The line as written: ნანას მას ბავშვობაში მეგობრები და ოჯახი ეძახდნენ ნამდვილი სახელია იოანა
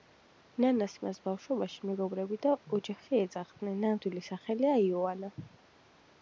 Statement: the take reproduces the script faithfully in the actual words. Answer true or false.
true